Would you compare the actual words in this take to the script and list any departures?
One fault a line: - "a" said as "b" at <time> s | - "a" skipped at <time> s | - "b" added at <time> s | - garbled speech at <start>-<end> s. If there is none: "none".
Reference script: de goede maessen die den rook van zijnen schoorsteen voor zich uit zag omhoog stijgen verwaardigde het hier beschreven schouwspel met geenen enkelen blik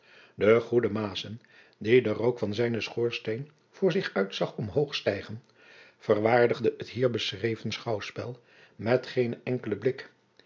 none